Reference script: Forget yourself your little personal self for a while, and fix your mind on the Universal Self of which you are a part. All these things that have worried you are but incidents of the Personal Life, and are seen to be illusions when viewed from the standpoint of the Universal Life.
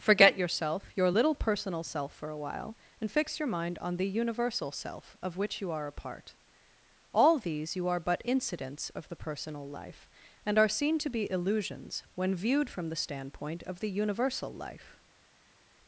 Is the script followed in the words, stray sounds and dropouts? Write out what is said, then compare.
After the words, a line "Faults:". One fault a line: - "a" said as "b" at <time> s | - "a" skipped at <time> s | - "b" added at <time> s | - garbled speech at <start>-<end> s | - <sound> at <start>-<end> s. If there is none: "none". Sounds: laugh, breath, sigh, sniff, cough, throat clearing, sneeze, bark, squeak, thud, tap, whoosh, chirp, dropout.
Forget yourself your little personal self for a while, and fix your mind on the Universal Self of which you are a part. All these you are but incidents of the Personal Life, and are seen to be illusions when viewed from the standpoint of the Universal Life.
Faults:
- "things that have worried" skipped at 7.8 s